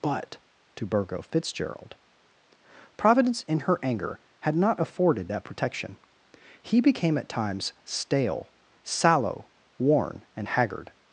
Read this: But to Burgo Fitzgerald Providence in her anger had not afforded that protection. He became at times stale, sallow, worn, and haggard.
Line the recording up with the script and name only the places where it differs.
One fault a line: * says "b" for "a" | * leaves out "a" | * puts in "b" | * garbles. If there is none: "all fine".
all fine